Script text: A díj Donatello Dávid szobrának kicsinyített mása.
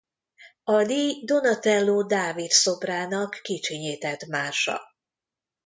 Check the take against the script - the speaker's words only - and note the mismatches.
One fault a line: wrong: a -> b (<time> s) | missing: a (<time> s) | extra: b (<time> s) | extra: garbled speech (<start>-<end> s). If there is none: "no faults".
no faults